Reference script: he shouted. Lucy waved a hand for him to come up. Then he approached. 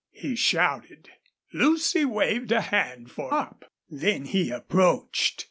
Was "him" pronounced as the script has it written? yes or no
no